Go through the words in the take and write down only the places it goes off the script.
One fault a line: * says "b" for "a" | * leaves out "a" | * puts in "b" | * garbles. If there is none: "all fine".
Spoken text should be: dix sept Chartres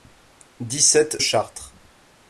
all fine